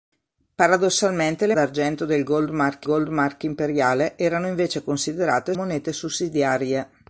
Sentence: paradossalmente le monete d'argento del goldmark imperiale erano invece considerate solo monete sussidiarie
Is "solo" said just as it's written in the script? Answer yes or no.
no